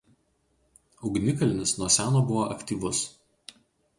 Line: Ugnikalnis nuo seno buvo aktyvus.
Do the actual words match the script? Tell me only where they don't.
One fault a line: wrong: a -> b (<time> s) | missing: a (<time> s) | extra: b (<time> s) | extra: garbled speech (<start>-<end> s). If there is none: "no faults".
no faults